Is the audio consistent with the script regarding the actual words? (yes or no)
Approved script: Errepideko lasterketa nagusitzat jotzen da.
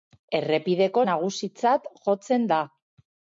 no